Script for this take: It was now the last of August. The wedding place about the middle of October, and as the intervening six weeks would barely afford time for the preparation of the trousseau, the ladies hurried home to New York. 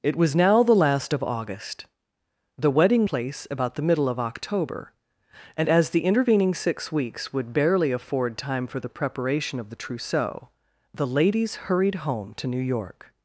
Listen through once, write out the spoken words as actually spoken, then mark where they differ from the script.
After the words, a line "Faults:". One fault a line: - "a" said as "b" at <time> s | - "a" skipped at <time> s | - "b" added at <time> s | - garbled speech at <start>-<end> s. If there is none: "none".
It was now the last of August. The wedding place about the middle of October, and as the intervening six weeks would barely afford time for the preparation of the trousseau, the ladies hurried home to New York.
Faults:
none